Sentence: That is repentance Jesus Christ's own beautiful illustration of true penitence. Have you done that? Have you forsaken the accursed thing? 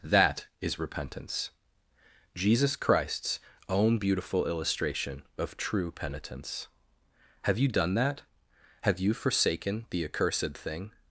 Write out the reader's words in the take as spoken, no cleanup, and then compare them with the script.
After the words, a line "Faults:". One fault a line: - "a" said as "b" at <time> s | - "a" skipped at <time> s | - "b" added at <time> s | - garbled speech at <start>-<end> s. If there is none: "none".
That is repentance Jesus Christ's own beautiful illustration of true penitence. Have you done that? Have you forsaken the accursed thing?
Faults:
none